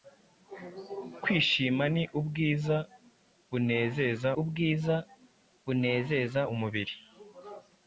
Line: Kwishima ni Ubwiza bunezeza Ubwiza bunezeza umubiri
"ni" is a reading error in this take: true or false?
false